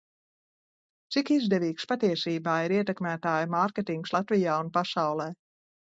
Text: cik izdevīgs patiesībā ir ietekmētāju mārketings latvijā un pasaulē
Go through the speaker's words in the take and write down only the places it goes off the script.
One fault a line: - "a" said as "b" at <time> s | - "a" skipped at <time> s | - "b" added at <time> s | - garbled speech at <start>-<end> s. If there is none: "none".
none